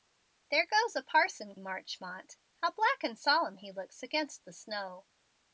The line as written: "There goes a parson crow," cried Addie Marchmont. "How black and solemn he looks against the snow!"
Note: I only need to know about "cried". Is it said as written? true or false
false